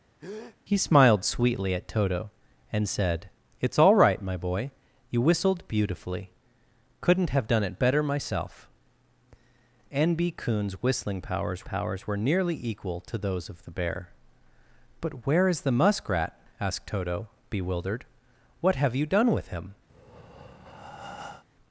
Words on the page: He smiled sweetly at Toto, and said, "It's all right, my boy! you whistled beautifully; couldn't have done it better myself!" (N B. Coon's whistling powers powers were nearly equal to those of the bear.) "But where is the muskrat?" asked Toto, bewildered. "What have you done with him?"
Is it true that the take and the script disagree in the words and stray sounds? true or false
true